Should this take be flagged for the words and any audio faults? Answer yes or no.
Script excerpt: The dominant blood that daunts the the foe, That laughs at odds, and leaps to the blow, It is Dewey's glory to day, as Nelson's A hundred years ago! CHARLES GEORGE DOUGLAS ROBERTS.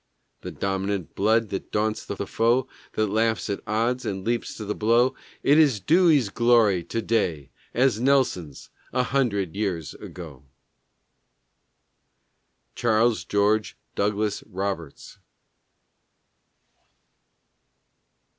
no